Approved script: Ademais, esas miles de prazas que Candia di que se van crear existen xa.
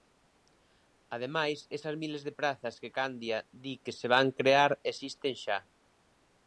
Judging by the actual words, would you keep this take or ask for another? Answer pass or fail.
pass